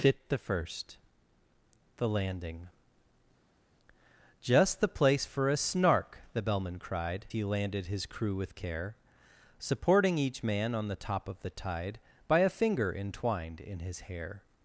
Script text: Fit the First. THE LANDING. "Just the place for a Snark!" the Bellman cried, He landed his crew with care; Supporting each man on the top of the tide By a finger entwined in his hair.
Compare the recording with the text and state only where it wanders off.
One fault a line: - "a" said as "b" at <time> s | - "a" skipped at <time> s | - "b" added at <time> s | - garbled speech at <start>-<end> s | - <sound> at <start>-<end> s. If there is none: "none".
none